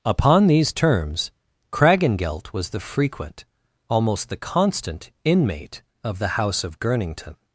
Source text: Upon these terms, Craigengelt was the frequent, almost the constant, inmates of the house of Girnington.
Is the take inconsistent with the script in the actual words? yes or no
yes